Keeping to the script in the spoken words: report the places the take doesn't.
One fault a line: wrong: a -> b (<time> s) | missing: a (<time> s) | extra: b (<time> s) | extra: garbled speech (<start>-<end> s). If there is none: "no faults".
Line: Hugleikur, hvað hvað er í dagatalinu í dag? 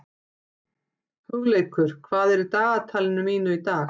missing: hvað (2.3 s)
extra: mínu (3.3 s)